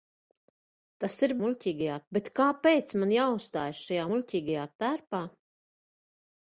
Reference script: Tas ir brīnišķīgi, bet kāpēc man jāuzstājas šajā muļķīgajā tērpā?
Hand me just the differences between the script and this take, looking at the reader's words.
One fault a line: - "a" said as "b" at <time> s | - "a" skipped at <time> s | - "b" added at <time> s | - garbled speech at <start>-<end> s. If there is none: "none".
- "brīnišķīgi" said as "muļķīgajā" at 1.5 s